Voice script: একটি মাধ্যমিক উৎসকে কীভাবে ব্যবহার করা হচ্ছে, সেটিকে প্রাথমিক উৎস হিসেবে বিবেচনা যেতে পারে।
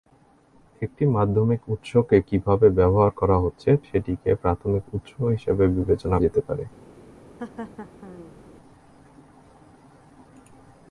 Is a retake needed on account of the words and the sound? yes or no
yes